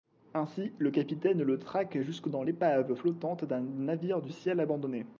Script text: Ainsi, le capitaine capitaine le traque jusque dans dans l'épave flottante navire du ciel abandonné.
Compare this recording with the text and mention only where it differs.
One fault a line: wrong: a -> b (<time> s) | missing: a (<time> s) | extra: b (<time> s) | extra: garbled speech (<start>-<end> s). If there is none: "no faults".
missing: capitaine (1.4 s)
missing: dans (2.4 s)
extra: d'un (3.4 s)